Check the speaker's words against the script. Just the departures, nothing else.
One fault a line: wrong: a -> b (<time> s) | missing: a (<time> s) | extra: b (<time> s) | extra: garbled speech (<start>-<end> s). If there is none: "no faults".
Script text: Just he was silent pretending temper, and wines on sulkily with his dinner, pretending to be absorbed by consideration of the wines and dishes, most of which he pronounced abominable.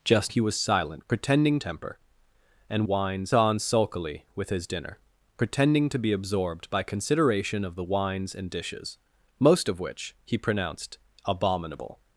no faults